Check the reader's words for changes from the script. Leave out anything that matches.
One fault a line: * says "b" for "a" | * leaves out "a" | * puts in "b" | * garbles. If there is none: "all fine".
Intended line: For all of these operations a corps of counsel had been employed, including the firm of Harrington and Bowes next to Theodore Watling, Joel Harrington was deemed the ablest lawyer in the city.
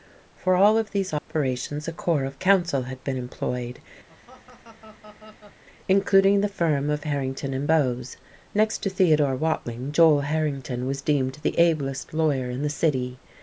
all fine